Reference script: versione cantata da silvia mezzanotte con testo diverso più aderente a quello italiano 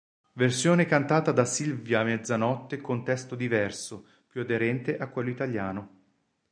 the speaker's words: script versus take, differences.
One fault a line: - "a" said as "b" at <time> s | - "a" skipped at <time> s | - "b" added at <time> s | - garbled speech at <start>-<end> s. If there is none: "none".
none